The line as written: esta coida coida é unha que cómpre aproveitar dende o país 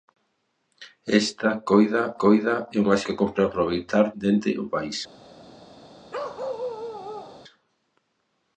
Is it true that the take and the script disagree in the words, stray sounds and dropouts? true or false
true